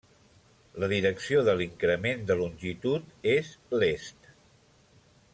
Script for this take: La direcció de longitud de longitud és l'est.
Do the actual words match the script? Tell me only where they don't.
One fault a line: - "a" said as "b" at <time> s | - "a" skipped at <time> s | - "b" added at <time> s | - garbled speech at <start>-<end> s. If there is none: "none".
- "longitud" said as "l'increment" at 1.6 s